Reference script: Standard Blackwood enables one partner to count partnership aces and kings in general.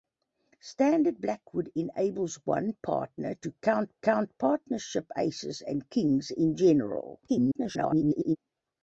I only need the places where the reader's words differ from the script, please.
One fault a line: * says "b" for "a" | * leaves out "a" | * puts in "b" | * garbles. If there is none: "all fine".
* puts in "count"
* garbles